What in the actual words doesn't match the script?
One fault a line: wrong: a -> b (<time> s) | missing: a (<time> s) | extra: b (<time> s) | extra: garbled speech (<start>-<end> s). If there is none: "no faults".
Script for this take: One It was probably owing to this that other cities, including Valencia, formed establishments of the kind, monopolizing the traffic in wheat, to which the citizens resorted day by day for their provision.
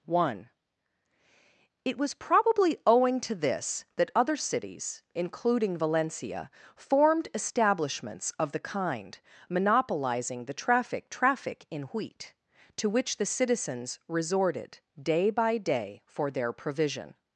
extra: traffic (11.1 s)